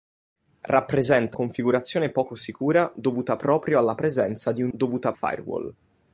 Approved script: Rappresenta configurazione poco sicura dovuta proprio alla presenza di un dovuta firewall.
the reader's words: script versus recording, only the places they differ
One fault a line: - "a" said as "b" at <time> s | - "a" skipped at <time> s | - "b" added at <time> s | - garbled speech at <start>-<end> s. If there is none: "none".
none